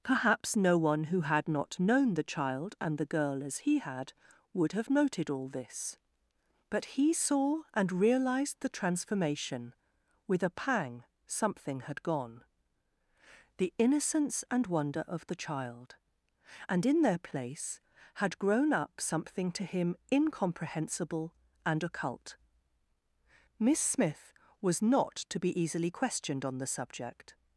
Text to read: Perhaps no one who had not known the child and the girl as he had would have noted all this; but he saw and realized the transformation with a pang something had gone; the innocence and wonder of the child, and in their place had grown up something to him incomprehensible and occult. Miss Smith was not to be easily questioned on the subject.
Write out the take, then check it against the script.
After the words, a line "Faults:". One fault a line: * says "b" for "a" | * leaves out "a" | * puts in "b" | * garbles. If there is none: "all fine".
Perhaps no one who had not known the child and the girl as he had would have noted all this; but he saw and realized the transformation with a pang something had gone; the innocence and wonder of the child, and in their place had grown up something to him incomprehensible and occult. Miss Smith was not to be easily questioned on the subject.
Faults:
all fine